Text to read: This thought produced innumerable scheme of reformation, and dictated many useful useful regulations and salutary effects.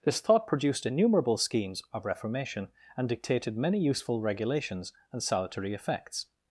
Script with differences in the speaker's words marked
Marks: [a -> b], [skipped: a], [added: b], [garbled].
This thought produced innumerable [scheme -> schemes] of reformation, and dictated many useful [skipped: useful] regulations and salutary effects.